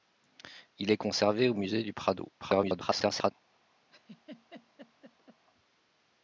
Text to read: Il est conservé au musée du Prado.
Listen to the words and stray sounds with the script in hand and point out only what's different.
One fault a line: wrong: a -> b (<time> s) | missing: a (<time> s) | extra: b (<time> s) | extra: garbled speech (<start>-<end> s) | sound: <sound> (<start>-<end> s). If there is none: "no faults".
extra: garbled speech (2.4-3.3 s)
sound: laugh (3.9-5.4 s)